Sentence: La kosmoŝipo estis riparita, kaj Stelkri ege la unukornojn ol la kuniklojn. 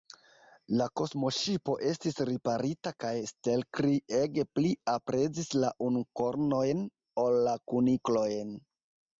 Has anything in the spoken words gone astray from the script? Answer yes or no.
yes